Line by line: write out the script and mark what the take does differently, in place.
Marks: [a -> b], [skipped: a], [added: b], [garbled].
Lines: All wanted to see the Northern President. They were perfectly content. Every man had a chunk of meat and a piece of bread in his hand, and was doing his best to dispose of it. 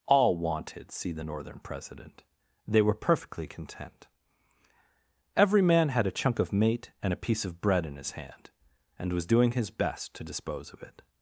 All wanted [skipped: to] see the Northern President. They were perfectly content. Every man had a chunk of [meat -> mate] and a piece of bread in his hand, and was doing his best to dispose of it.